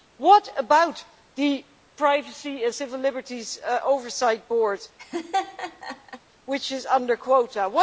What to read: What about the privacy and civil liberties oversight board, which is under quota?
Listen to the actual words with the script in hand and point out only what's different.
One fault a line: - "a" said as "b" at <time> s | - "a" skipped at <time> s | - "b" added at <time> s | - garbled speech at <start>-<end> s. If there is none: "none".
none